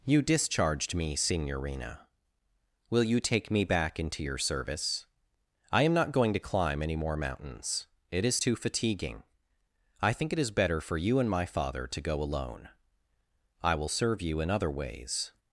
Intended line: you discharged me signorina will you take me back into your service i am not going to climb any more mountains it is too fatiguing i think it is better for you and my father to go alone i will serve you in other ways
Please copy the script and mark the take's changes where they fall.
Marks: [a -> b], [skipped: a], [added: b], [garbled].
you discharged me signorina will you take me back into your service i am not going to climb any more mountains it is too fatiguing i think it is better for you and my father to go alone i will serve you in other ways